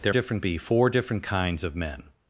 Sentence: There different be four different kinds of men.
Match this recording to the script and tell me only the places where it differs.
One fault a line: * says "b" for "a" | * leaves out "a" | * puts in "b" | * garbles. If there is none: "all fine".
all fine